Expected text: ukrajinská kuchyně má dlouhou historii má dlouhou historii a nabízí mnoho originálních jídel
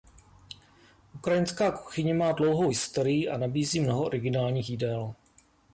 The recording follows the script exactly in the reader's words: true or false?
false